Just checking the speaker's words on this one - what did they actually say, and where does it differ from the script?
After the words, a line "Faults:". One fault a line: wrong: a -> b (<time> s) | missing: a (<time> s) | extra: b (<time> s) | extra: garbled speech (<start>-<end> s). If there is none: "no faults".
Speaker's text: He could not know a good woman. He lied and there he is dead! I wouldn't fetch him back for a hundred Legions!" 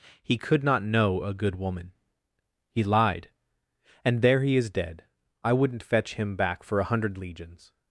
He could not know a good woman. He lied and there he is dead! I wouldn't fetch him back for a hundred Legions!"
Faults:
no faults